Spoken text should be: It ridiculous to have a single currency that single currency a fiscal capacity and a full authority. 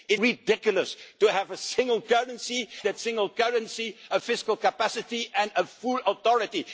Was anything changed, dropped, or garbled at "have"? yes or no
no